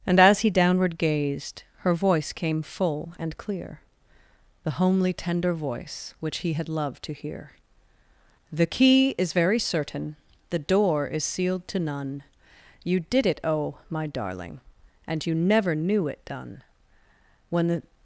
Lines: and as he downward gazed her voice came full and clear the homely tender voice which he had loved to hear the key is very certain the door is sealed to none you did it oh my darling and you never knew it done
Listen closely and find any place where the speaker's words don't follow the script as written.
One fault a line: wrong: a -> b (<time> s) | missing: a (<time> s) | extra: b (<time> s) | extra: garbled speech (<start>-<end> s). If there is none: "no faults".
extra: when the (17.5 s)